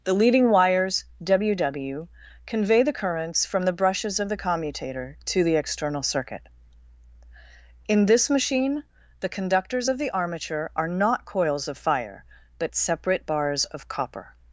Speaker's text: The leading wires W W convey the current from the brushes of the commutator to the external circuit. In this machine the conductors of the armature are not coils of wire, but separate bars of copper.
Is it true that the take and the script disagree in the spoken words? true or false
true